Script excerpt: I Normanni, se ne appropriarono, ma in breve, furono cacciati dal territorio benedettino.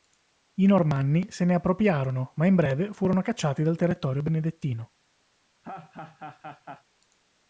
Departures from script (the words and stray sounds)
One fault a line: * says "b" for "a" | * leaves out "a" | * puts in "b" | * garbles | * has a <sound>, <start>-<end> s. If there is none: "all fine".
* has a laugh, 5.6-6.8 s